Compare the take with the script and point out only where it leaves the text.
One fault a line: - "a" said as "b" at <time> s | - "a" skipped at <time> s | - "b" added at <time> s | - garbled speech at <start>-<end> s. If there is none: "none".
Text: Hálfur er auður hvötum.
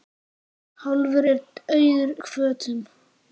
none